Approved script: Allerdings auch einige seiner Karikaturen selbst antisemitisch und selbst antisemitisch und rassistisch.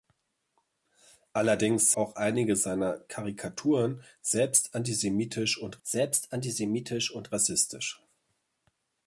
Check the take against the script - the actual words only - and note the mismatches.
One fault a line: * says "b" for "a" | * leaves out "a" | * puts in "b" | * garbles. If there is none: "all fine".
all fine